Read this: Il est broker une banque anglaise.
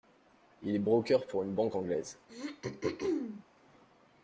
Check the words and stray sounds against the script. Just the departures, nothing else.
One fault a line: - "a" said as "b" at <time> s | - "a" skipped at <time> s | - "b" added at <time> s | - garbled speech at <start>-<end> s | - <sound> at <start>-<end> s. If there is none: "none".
- "pour" added at 1.3 s
- throat clearing at 2.3-3.4 s